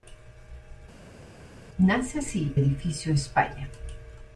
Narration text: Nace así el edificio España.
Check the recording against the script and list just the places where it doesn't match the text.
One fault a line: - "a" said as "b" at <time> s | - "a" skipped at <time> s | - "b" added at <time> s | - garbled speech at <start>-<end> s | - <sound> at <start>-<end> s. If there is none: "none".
- "el" skipped at 2.6 s